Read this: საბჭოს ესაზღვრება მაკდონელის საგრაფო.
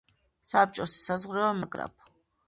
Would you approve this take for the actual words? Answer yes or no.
no